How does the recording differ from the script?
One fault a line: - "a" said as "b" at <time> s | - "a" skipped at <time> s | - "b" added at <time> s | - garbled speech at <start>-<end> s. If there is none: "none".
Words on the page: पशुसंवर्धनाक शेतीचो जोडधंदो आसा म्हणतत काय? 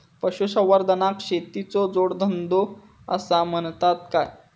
none